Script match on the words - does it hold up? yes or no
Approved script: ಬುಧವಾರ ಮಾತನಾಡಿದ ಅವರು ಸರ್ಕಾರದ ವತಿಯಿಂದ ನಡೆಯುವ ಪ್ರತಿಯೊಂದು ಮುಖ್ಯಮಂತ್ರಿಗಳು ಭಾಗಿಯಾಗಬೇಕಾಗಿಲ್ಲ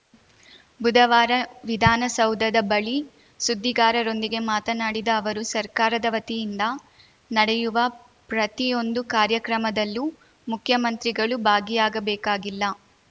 no